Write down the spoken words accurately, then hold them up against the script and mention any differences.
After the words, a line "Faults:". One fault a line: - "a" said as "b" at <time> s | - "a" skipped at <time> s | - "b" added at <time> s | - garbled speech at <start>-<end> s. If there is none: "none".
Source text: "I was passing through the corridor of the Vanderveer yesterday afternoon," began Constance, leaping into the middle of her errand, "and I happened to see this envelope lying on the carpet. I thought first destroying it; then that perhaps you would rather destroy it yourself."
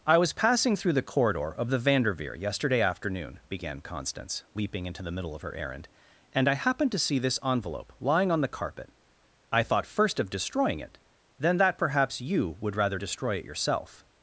"I was passing through the corridor of the Vanderveer yesterday afternoon," began Constance, leaping into the middle of her errand, "and I happened to see this envelope lying on the carpet. I thought first of destroying it; then that perhaps you would rather destroy it yourself."
Faults:
- "of" added at 10.2 s